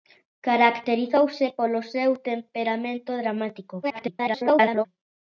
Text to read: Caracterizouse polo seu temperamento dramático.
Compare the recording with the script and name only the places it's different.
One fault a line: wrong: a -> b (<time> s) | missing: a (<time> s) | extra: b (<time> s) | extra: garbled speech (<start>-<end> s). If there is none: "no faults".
extra: garbled speech (3.8-4.9 s)